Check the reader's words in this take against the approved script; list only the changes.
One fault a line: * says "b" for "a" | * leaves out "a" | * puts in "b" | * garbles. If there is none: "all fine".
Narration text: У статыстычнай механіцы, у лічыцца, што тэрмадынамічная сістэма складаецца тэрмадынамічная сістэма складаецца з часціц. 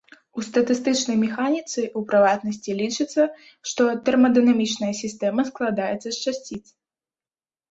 * puts in "прыватнасці"
* leaves out "тэрмадынамічная сістэма складаецца"